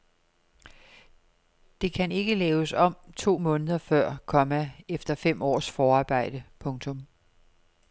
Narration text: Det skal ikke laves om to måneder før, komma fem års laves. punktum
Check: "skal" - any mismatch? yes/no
yes